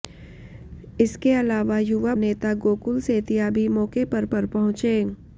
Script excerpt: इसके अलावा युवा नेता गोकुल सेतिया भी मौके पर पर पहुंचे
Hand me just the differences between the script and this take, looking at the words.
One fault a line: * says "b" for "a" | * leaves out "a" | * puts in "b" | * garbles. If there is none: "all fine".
all fine